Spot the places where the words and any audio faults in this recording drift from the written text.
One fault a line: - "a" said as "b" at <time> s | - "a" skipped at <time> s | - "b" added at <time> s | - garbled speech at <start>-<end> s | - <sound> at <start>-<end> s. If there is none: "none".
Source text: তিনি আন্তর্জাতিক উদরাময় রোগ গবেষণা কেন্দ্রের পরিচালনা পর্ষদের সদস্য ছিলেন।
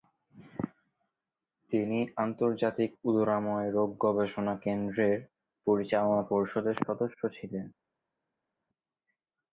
none